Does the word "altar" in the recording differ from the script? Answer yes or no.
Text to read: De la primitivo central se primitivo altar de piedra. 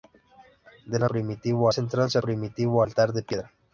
no